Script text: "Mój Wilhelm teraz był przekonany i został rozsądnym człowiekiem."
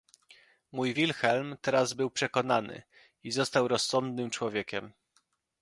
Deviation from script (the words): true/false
false